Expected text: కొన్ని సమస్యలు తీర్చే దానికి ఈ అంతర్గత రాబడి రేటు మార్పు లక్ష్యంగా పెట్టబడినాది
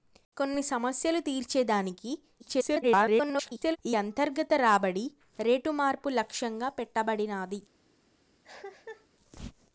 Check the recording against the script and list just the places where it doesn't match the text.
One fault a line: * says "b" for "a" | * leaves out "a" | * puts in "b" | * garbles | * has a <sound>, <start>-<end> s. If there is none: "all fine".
* garbles
* has a cough, 8.4-9.1 s